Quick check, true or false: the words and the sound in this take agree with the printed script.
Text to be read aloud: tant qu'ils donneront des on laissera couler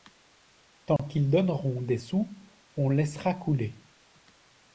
false